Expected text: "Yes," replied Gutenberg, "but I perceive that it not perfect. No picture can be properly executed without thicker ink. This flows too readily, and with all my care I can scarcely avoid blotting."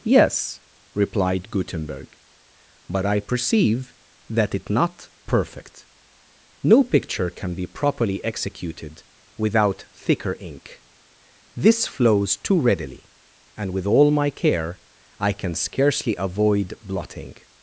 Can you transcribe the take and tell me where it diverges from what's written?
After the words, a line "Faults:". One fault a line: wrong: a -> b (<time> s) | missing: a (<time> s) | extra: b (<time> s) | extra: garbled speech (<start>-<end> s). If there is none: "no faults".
"Yes," replied Gutenberg, "but I perceive that it not perfect. No picture can be properly executed without thicker ink. This flows too readily, and with all my care I can scarcely avoid blotting."
Faults:
no faults